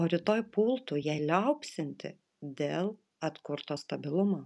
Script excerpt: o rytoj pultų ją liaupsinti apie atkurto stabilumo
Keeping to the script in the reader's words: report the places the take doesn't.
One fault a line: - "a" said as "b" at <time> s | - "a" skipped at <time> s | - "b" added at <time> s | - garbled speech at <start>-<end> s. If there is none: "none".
- "apie" said as "dėl" at 2.6 s